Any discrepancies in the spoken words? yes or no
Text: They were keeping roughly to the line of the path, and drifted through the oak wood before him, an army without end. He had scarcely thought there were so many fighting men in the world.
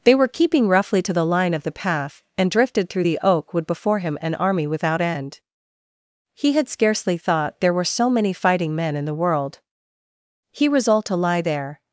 yes